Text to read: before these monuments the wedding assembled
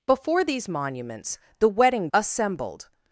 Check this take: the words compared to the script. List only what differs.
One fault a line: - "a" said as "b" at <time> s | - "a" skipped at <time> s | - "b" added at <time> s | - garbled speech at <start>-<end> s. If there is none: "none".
none